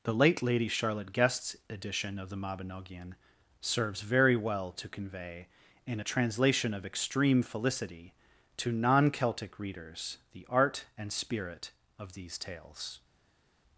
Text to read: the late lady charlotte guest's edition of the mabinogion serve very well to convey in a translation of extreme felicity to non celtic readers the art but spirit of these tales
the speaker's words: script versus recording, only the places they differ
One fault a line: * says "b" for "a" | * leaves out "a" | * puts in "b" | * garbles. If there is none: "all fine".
* says "serves" for "serve"
* says "and" for "but"